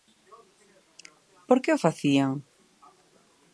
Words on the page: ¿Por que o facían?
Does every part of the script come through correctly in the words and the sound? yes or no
yes